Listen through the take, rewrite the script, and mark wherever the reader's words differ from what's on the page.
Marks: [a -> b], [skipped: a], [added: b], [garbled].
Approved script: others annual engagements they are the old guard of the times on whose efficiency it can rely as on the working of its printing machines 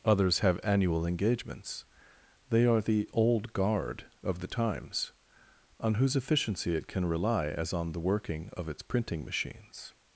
others [added: have] annual engagements they are the old guard of the times on whose efficiency it can rely as on the working of its printing machines